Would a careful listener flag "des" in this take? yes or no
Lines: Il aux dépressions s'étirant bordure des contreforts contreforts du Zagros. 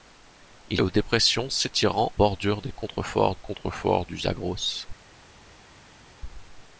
no